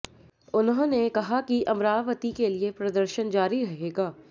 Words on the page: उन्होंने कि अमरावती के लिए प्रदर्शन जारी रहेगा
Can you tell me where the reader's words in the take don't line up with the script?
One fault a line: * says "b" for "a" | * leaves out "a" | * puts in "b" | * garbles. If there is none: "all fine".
* puts in "कहा"